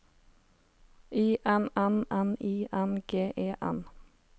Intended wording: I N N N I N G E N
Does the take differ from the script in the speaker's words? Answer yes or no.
no